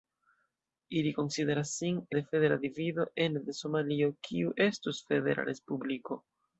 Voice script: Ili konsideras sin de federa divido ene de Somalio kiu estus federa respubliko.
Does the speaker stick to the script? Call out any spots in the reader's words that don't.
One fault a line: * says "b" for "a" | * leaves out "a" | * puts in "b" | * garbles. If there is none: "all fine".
all fine